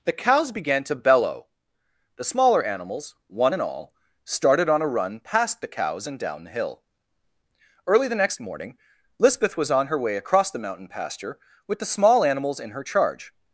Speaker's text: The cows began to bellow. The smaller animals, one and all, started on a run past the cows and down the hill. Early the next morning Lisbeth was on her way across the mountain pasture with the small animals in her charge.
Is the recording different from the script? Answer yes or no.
no